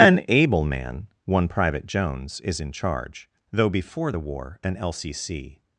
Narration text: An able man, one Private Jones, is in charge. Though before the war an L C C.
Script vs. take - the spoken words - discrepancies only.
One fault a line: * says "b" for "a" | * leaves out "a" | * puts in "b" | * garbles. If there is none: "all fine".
all fine